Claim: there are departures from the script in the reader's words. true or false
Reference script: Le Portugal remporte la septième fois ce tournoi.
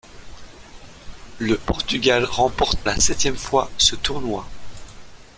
false